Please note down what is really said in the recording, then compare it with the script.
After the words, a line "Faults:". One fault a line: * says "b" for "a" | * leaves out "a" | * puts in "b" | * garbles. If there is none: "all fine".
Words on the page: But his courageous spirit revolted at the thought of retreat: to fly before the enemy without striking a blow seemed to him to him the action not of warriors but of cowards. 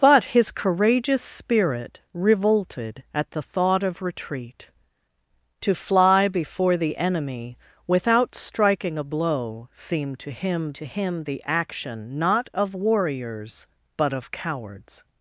But his courageous spirit revolted at the thought of retreat: to fly before the enemy without striking a blow seemed to him to him the action not of warriors but of cowards.
Faults:
all fine